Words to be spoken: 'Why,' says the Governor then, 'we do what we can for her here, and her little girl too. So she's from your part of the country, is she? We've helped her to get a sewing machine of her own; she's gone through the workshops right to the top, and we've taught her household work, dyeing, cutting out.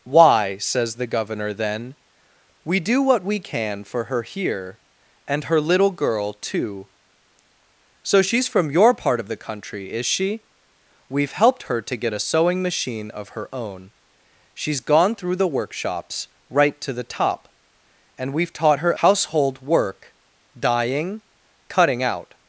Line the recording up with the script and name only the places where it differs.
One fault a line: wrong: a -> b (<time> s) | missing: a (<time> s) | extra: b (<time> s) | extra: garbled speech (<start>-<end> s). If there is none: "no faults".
no faults